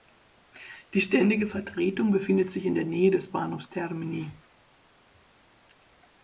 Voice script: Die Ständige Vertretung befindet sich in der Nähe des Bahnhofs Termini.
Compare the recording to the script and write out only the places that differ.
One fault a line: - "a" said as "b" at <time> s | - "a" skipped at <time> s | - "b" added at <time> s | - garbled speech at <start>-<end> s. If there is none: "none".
none